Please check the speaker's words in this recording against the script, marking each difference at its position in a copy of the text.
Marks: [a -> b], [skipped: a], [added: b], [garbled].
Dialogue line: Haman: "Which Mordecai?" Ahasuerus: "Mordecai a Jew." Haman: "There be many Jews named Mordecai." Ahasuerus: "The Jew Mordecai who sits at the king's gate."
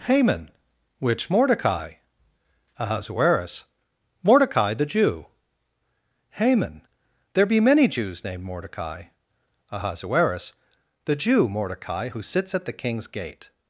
Haman: "Which Mordecai?" Ahasuerus: "Mordecai [a -> the] Jew." Haman: "There be many Jews named Mordecai." Ahasuerus: "The Jew Mordecai who sits at the king's gate."